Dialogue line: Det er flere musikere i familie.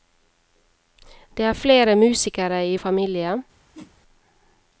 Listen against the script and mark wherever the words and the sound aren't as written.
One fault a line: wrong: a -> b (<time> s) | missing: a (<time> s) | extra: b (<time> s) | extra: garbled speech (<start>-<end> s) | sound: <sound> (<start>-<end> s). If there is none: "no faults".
sound: whoosh (3.7-4.0 s)